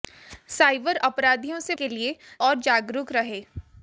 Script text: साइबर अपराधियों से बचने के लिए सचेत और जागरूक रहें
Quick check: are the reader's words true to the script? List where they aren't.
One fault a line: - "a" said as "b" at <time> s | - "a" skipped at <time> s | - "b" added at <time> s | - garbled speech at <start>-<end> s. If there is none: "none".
- "बचने" skipped at 1.8 s
- "सचेत" skipped at 2.2 s